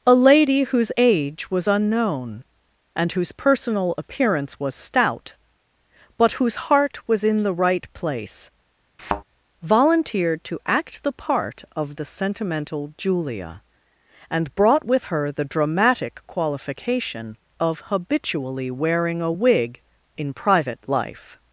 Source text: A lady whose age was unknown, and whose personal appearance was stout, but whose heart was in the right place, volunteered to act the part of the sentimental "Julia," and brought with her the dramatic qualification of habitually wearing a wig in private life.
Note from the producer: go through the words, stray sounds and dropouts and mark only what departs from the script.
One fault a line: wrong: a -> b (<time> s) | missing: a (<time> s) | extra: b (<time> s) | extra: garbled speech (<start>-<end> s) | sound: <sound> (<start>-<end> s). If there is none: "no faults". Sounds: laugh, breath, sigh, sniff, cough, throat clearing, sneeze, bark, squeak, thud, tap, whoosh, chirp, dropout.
sound: thud (9.0-9.2 s)